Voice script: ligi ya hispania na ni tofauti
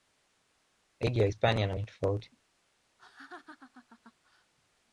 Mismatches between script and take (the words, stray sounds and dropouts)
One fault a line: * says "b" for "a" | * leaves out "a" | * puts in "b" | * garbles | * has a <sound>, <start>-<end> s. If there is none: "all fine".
* has a laugh, 3.0-4.5 s